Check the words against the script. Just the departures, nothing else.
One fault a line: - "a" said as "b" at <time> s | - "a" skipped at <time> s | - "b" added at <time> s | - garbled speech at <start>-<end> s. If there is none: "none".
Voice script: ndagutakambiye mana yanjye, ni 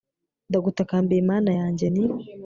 none